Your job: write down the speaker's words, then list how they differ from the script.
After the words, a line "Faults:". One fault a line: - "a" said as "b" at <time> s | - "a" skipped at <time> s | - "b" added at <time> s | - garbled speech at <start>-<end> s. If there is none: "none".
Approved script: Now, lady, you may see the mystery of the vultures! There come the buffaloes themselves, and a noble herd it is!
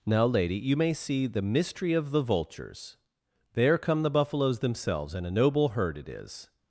Now, lady, you may see the mystery of the vultures! There come the buffaloes themselves, and a noble herd it is!
Faults:
none